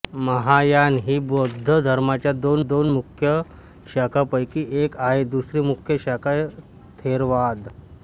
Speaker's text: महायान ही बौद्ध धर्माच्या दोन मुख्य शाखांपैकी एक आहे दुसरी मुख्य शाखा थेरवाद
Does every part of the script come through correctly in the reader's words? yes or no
no